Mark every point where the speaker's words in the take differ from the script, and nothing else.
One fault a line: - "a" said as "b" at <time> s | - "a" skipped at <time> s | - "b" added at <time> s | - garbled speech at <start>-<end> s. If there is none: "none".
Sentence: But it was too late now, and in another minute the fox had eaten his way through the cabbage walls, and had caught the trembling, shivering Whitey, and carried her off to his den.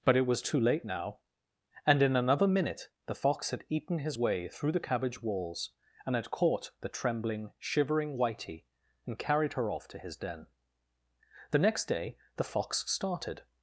- "The next day the fox started" added at 11.5 s